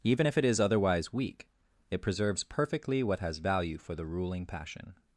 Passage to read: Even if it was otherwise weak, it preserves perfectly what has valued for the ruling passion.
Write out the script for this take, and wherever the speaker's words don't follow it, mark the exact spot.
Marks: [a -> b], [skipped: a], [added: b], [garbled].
Even if it [was -> is] otherwise weak, it preserves perfectly what has [valued -> value] for the ruling passion.